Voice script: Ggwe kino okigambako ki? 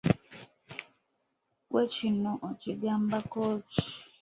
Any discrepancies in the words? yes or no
no